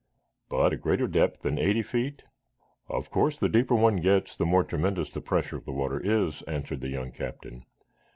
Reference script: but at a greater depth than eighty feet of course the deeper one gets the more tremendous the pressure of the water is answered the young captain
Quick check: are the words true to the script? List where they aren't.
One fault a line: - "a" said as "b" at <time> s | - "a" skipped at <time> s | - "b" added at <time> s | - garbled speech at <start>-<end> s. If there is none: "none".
- "at" skipped at 0.7 s